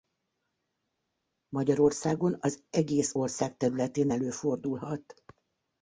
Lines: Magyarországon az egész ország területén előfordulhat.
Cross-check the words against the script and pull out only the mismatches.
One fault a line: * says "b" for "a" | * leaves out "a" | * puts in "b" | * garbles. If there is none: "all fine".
all fine